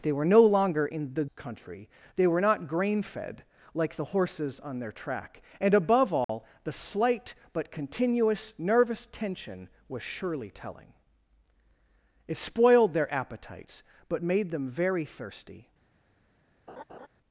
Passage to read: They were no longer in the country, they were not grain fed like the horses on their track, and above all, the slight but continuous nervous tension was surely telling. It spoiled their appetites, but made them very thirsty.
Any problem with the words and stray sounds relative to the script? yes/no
yes